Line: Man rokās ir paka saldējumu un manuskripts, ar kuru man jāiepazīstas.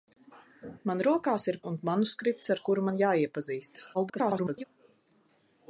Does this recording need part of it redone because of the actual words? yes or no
yes